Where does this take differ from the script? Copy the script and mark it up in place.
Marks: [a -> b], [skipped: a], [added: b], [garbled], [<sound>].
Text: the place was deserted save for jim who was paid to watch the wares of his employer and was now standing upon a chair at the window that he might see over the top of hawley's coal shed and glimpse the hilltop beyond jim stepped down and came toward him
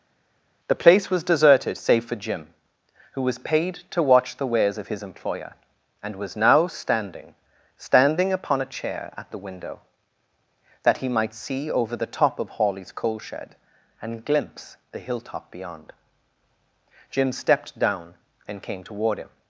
the place was deserted save for jim who was paid to watch the wares of his employer and was now standing [added: standing] upon a chair at the window that he might see over the top of hawley's coal shed and glimpse the hilltop beyond jim stepped down and came toward him